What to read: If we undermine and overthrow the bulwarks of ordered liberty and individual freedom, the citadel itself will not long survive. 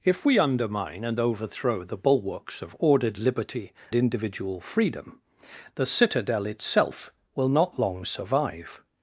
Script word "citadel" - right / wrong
right